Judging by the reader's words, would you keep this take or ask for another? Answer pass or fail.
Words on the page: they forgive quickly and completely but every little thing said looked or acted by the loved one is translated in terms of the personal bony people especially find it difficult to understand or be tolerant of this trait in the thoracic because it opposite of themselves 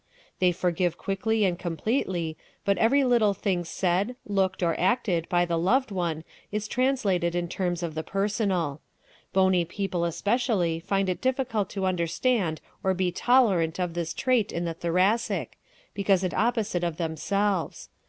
pass